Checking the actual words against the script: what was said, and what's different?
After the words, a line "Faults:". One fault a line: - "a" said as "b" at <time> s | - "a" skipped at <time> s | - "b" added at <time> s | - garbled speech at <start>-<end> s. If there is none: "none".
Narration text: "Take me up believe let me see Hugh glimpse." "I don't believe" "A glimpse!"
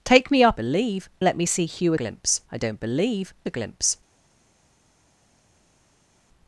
"Take me up believe let me see Hugh glimpse." "I don't believe" "A glimpse!"
Faults:
none